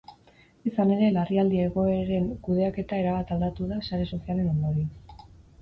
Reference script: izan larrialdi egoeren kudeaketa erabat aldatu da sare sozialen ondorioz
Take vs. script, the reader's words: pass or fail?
fail